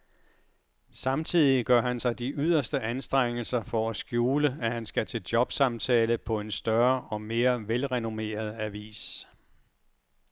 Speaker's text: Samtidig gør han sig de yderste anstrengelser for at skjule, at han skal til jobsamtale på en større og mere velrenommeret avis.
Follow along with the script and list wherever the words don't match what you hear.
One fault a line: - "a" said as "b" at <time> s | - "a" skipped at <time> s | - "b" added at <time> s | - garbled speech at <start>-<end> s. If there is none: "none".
none